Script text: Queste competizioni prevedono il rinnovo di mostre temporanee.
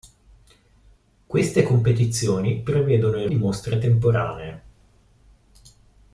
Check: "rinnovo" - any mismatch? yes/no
yes